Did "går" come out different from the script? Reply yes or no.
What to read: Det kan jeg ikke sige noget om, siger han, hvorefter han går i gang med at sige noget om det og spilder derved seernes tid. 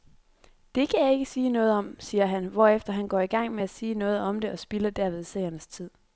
no